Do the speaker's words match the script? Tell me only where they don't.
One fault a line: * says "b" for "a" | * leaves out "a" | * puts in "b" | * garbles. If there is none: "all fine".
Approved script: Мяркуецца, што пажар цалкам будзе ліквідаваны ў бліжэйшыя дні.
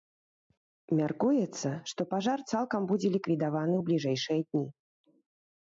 all fine